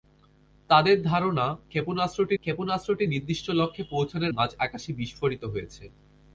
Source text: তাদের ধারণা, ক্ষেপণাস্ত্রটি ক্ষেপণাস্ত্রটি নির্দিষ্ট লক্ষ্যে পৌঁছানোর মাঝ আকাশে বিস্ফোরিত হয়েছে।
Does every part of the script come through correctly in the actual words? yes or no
yes